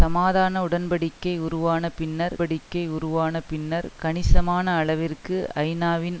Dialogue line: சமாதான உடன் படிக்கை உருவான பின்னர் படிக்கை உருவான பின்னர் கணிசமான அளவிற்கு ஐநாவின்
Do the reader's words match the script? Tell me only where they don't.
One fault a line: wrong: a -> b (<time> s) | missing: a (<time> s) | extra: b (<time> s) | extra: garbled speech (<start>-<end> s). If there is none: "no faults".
no faults